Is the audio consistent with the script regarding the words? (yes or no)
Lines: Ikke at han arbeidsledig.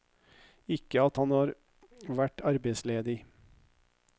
no